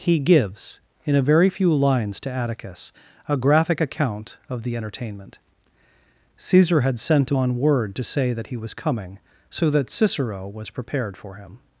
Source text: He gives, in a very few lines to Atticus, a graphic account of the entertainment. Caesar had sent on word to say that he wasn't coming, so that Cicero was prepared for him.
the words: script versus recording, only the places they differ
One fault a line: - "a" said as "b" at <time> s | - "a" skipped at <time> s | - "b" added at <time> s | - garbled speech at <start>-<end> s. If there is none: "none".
- "wasn't" said as "was" at 8.6 s